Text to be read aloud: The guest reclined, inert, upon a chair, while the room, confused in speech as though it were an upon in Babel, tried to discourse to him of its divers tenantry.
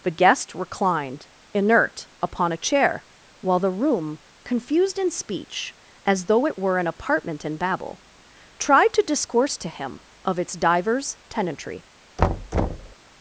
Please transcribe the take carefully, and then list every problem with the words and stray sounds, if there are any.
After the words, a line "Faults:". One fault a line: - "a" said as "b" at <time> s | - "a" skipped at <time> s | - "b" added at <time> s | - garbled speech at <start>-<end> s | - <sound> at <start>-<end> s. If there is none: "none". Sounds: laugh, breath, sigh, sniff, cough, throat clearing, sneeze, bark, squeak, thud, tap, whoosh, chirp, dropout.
The guest reclined, inert, upon a chair, while the room, confused in speech as though it were an apartment in Babel, tried to discourse to him of its divers tenantry.
Faults:
- "upon" said as "apartment" at 6.9 s
- thud at 12.2-13.0 s